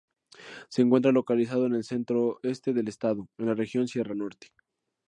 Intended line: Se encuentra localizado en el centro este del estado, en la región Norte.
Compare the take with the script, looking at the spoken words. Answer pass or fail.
fail